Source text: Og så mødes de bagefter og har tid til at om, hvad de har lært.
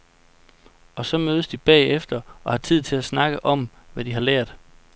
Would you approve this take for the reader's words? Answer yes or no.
no